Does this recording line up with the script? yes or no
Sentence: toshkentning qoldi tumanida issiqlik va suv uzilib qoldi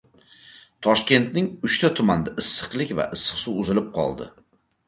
no